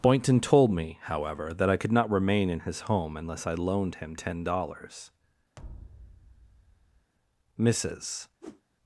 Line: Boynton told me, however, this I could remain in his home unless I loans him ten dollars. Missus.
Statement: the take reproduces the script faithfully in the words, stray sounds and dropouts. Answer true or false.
false